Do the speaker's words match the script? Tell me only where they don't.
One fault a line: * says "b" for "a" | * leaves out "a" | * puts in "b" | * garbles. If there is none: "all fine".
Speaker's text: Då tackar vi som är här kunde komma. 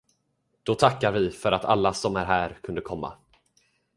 * puts in "för att alla"